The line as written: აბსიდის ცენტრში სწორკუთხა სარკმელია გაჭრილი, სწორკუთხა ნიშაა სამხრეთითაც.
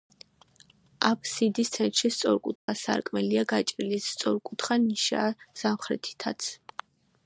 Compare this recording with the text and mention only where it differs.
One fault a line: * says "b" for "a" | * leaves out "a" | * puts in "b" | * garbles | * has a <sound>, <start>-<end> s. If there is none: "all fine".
* has a dropout, 2.6-2.7 s